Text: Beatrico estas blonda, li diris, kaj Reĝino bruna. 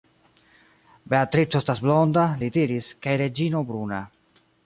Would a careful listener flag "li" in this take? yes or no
no